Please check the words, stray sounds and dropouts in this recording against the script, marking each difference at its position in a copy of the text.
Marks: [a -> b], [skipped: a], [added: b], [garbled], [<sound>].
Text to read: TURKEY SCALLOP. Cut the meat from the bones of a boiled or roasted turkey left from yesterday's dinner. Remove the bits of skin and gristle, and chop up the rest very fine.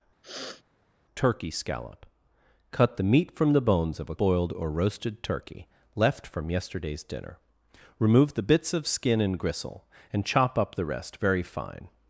[sniff] TURKEY SCALLOP. Cut the meat from the bones of a boiled or roasted turkey left from yesterday's dinner. Remove the bits of skin and gristle, and chop up the rest very fine.